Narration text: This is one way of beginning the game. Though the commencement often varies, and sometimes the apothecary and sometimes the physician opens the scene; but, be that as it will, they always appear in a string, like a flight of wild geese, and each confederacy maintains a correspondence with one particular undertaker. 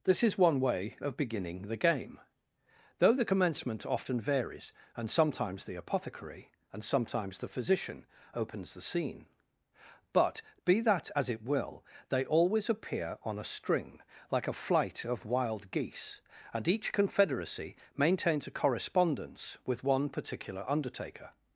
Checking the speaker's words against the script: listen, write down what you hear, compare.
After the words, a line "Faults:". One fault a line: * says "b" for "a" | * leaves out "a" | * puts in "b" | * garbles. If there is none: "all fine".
This is one way of beginning the game. Though the commencement often varies, and sometimes the apothecary and sometimes the physician opens the scene; but, be that as it will, they always appear on a string, like a flight of wild geese, and each confederacy maintains a correspondence with one particular undertaker.
Faults:
* says "on" for "in"